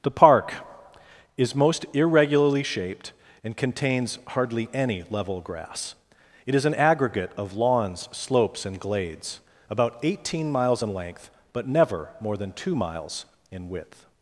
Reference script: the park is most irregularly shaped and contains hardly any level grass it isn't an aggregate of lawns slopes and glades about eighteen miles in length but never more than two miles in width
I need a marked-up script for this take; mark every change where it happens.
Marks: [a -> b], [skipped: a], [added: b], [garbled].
the park is most irregularly shaped and contains hardly any level grass it [isn't -> is] an aggregate of lawns slopes and glades about eighteen miles in length but never more than two miles in width